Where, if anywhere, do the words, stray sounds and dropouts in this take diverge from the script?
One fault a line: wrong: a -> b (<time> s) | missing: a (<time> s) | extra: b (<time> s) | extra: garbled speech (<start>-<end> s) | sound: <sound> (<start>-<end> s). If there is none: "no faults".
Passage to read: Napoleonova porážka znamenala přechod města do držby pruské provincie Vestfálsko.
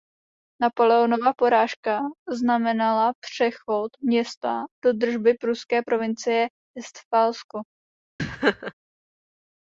sound: laugh (8.2-8.7 s)